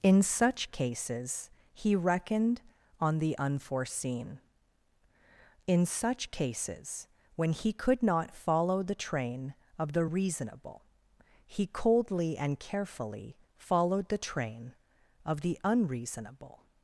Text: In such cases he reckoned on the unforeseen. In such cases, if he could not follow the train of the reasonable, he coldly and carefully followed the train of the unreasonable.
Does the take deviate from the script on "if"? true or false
true